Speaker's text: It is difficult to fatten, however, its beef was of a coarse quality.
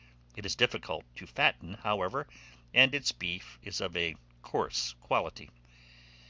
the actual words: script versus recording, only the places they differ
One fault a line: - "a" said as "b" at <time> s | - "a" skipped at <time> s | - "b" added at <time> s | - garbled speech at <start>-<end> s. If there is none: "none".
- "and" added at 2.7 s
- "was" said as "is" at 3.6 s